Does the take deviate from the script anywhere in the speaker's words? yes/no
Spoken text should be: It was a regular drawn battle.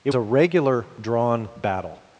yes